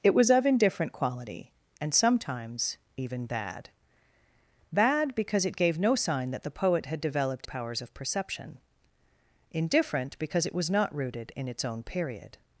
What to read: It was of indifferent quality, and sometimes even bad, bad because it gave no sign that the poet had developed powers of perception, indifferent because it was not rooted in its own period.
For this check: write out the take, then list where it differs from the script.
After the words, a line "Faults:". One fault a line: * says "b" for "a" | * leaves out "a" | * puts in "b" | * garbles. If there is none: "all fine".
It was of indifferent quality, and sometimes even bad, bad because it gave no sign that the poet had developed powers of perception, indifferent because it was not rooted in its own period.
Faults:
all fine